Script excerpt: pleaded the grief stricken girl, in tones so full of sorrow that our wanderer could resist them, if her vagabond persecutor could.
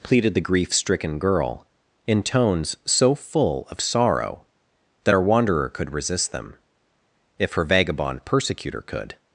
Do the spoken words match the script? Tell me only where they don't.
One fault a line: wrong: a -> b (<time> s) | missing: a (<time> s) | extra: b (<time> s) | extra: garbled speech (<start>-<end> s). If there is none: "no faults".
no faults